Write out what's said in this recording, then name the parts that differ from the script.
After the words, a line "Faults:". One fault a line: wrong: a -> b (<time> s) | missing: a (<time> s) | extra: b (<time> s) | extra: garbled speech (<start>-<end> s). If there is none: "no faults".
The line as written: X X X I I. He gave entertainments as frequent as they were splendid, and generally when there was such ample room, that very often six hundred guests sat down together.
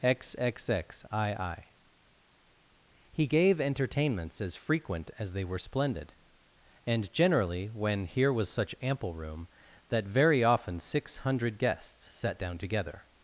X X X I I. He gave entertainments as frequent as they were splendid, and generally when here was such ample room, that very often six hundred guests sat down together.
Faults:
wrong: there -> here (8.1 s)